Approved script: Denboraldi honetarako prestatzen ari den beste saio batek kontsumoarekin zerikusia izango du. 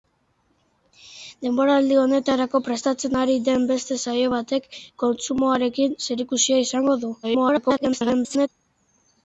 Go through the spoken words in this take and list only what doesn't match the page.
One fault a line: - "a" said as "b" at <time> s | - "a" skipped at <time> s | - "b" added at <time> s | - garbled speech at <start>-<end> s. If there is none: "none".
- garbled speech at 7.2-8.5 s